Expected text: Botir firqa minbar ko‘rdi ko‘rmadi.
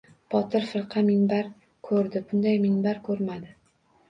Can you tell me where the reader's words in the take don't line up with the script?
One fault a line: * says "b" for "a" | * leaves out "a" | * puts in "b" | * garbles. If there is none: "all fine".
* puts in "bunday minbar"